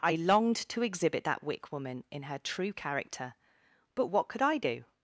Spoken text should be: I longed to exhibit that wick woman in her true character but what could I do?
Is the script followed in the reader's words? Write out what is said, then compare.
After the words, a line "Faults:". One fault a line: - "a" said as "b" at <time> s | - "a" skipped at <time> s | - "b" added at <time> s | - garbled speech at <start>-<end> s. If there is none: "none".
I longed to exhibit that wick woman in her true character but what could I do?
Faults:
none